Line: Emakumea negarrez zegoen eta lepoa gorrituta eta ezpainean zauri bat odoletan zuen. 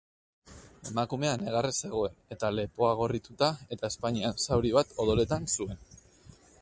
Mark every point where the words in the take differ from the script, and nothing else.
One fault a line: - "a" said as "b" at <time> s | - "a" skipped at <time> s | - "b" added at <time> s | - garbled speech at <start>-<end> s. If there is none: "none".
none